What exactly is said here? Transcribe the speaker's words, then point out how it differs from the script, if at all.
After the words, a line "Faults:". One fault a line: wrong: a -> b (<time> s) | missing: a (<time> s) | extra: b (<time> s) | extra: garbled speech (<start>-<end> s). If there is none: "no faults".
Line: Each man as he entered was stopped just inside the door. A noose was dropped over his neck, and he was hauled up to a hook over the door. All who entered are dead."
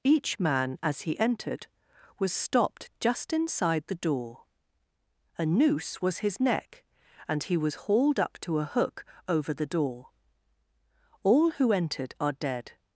Each man as he entered was stopped just inside the door. A noose was his neck, and he was hauled up to a hook over the door. All who entered are dead."
Faults:
missing: dropped over (6.2 s)